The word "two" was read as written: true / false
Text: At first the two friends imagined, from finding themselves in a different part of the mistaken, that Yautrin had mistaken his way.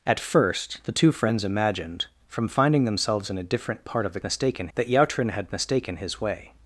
true